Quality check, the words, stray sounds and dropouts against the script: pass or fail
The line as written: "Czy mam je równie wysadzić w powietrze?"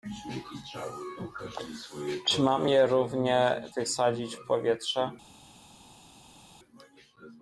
pass